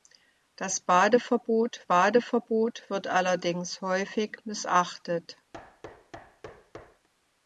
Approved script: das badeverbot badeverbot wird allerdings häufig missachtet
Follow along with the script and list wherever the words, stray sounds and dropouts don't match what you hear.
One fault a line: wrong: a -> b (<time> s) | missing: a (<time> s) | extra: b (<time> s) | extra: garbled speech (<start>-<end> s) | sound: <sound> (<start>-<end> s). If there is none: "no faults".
sound: thud (5.5-7.1 s)